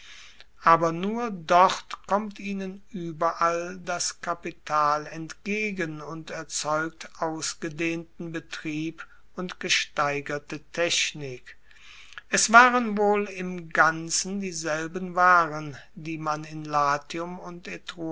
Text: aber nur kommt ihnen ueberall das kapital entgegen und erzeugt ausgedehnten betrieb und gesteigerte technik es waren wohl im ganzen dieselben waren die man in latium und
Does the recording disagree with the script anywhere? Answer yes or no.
yes